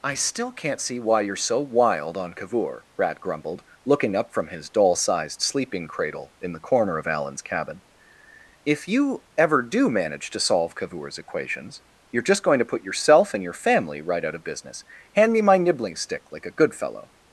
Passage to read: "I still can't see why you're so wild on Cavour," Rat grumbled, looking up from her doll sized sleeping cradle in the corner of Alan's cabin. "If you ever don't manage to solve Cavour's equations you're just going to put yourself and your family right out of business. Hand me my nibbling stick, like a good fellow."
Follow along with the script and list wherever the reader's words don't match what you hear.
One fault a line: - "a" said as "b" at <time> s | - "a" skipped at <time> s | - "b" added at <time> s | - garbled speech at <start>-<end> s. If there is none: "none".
- "her" said as "his" at 4.5 s
- "don't" said as "do" at 9.6 s